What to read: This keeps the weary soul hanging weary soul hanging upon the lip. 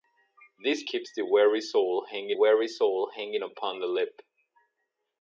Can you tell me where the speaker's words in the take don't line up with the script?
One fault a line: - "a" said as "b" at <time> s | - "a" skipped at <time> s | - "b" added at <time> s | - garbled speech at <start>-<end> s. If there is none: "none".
none